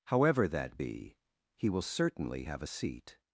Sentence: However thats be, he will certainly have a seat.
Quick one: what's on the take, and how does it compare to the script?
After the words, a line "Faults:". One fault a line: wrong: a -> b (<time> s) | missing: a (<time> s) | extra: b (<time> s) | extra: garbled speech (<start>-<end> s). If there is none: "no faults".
However that be, he will certainly have a seat.
Faults:
wrong: thats -> that (0.5 s)